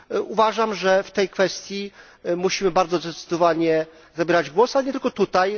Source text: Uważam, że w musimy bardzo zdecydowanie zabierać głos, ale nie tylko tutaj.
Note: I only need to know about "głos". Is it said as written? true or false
true